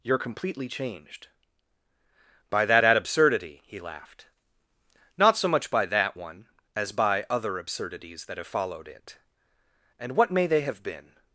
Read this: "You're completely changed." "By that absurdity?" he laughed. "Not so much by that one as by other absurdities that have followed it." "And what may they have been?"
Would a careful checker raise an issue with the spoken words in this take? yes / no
yes